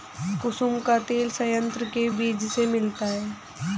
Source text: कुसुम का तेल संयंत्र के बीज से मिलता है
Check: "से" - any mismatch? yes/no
no